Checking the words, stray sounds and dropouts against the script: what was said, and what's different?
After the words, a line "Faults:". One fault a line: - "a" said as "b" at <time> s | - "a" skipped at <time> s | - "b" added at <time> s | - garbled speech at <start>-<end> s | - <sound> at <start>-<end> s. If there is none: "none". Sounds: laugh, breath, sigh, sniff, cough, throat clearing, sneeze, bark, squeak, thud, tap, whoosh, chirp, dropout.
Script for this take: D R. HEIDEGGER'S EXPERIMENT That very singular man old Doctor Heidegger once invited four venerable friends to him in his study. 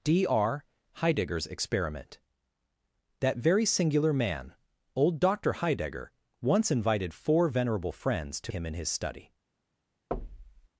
D R. HEIDEGGER'S EXPERIMENT That very singular man old Doctor Heidegger once invited four venerable friends to him in his study.
Faults:
- thud at 10.1-10.7 s